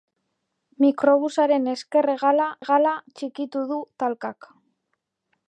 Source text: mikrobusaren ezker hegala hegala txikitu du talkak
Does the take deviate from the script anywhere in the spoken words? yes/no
no